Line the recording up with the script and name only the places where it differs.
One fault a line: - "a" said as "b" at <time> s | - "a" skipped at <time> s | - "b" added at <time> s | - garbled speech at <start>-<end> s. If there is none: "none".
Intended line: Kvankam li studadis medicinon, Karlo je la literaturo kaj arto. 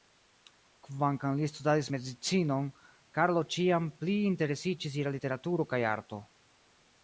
- "ĉiam pli interesiĝis" added at 3.5 s